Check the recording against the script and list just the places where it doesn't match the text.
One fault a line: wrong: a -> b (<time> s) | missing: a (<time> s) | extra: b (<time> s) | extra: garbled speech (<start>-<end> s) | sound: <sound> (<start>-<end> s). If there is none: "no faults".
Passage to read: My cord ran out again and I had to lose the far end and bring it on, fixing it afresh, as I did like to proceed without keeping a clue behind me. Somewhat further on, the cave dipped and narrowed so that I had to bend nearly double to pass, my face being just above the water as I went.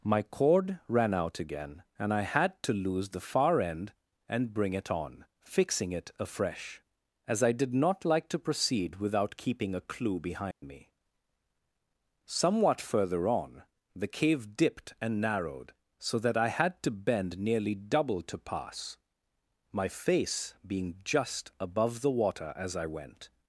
extra: not (7.7 s)
sound: dropout (10.5-10.6 s)